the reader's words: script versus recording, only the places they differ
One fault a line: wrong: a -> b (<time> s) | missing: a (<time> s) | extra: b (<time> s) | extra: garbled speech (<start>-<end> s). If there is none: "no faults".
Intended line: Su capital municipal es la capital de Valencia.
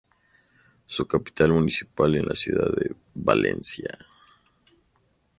wrong: capital -> ciudad (2.3 s)